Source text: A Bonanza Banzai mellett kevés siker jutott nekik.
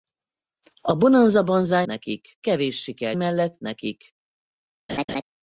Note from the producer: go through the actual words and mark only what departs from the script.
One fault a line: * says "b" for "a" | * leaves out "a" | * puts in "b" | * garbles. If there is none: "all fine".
* says "nekik" for "mellett"
* says "mellett" for "jutott"